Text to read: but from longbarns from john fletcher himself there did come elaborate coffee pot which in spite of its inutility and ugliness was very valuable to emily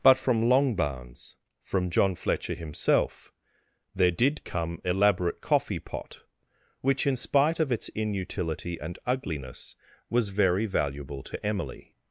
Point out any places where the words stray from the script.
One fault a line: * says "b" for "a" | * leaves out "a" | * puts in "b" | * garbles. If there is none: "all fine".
all fine